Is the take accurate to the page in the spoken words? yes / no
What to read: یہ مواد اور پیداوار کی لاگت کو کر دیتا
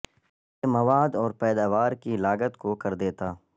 yes